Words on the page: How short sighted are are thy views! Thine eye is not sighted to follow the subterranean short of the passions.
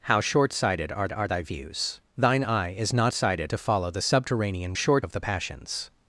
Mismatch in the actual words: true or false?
false